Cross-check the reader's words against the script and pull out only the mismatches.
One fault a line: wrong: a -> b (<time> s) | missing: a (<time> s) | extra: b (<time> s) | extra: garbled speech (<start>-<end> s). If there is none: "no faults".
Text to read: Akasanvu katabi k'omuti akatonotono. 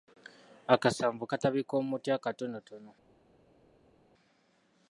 no faults